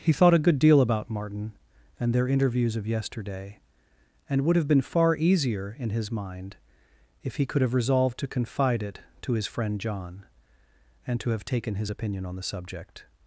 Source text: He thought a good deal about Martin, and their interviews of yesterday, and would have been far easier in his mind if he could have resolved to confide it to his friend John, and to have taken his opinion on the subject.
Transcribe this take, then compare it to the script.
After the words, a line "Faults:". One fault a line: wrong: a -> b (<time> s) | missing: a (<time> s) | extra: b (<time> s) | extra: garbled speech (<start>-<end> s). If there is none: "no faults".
He thought a good deal about Martin, and their interviews of yesterday, and would have been far easier in his mind if he could have resolved to confide it to his friend John, and to have taken his opinion on the subject.
Faults:
no faults